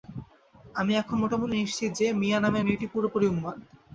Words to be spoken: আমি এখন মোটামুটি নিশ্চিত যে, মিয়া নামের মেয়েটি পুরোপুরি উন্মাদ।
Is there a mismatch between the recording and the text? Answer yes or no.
no